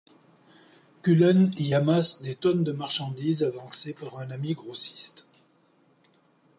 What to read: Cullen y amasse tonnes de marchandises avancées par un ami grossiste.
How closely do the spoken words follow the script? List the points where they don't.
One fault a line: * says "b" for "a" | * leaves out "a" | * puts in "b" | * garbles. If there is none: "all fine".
* puts in "des"